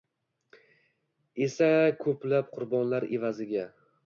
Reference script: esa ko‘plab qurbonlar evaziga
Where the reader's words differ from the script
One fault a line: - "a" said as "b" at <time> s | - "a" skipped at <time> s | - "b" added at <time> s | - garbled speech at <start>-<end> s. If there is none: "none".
none